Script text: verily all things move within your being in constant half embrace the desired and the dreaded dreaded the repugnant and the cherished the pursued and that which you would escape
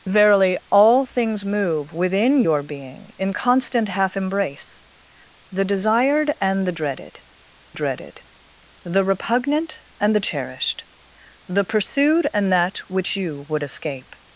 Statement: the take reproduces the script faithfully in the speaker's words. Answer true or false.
true